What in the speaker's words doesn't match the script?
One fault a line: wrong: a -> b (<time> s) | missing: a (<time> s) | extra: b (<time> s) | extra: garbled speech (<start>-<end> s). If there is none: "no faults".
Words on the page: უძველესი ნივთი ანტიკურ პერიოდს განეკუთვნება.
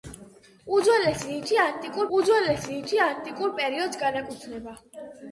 extra: უძველესი ნივთი ანტიკურ (2.2 s)